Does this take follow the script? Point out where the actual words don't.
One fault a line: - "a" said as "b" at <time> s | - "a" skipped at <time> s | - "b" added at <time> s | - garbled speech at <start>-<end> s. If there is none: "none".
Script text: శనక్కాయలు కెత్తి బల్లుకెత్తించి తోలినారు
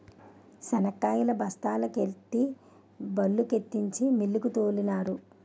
- "బస్తాల" added at 1.4 s
- "మిల్లుకు" added at 4.2 s